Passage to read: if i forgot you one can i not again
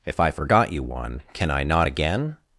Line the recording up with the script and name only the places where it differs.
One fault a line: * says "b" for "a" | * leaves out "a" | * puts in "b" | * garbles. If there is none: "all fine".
all fine